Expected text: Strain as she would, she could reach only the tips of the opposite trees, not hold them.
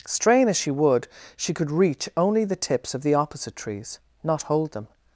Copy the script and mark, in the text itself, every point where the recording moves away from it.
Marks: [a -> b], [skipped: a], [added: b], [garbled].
Strain as she would, she could reach only the tips of the opposite trees, not hold them.